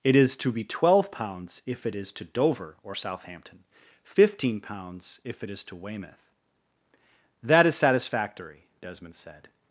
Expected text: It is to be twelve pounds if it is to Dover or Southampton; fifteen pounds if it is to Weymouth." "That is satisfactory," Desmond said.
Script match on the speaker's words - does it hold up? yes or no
yes